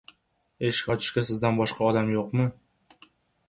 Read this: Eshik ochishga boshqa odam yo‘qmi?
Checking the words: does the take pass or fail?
fail